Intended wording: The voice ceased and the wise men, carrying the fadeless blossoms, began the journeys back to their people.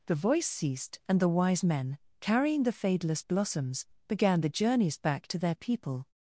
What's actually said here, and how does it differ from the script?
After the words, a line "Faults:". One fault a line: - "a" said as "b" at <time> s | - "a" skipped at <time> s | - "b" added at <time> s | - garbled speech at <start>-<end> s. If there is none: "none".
The voice ceased and the wise men, carrying the fadeless blossoms, began the journeys back to their people.
Faults:
none